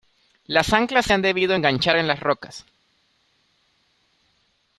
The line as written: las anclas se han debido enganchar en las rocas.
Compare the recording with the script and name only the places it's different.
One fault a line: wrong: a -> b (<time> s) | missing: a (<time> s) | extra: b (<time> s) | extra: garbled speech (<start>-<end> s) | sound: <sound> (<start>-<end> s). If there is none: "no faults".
no faults